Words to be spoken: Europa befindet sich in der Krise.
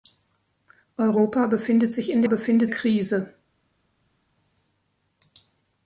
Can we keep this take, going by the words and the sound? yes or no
no